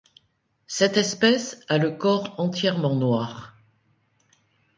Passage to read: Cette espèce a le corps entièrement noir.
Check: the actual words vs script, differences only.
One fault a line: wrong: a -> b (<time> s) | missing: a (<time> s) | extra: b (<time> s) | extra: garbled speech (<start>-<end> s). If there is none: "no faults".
no faults